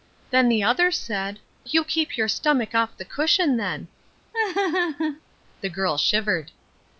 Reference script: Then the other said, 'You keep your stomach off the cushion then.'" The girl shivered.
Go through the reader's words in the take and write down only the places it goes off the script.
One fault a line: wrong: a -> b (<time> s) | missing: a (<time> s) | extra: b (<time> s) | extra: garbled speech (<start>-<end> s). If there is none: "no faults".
no faults